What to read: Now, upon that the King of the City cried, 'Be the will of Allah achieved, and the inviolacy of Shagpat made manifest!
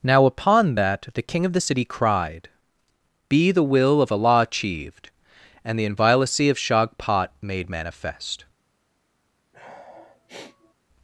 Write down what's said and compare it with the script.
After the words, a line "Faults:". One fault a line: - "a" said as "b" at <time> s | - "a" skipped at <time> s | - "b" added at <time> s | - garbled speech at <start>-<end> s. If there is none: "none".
Now, upon that the King of the City cried, 'Be the will of Allah achieved, and the inviolacy of Shagpat made manifest!
Faults:
none